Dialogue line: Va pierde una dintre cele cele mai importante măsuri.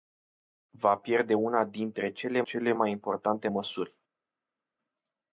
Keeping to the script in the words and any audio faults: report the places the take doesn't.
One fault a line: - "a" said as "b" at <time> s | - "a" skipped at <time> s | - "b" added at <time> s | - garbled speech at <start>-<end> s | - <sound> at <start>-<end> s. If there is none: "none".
none